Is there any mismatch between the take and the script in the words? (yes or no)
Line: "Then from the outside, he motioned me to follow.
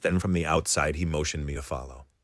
no